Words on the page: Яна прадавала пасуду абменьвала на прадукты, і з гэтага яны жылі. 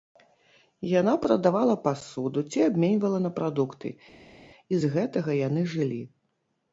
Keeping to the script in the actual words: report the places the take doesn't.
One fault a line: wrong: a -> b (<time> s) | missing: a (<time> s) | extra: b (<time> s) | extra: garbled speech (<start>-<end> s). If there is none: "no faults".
extra: ці (2.5 s)